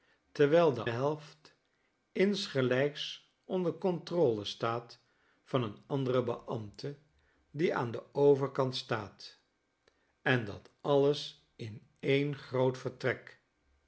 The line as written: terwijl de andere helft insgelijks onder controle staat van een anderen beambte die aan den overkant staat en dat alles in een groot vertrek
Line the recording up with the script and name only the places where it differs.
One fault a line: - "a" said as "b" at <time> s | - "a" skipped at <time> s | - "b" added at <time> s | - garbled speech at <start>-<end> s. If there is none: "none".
- "andere" skipped at 0.8 s